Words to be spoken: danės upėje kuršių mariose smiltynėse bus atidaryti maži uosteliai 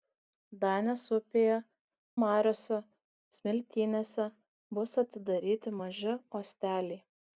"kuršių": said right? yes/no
no